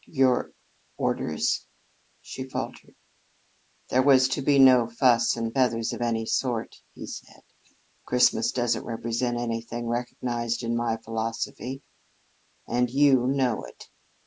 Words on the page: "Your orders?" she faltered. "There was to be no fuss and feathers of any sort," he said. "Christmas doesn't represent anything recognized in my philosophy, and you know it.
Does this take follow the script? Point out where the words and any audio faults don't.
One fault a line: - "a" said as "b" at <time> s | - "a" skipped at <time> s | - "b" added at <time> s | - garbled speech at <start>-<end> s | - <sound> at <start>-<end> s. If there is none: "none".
none